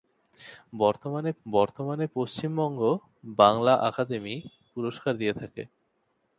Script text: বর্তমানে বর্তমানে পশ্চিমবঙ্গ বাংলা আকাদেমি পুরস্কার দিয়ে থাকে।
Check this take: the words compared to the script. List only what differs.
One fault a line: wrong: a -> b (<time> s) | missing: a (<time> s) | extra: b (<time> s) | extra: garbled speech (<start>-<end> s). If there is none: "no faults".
no faults